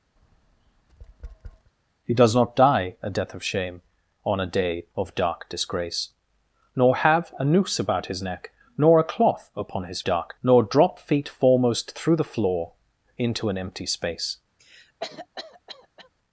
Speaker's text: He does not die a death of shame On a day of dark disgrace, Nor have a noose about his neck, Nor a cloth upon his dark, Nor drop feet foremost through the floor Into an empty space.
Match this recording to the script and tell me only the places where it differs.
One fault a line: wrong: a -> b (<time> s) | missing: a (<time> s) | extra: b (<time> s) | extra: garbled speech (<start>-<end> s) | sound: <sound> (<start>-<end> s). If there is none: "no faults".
sound: tap (0.2-1.7 s)
sound: cough (14.6-16.1 s)